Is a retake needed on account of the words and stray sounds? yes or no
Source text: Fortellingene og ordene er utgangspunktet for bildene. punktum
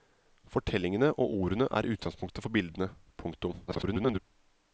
yes